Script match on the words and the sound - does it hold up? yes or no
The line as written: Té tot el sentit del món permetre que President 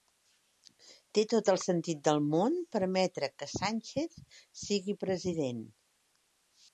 no